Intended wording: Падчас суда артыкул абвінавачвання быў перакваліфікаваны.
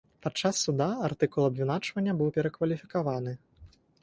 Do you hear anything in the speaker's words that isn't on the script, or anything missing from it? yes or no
no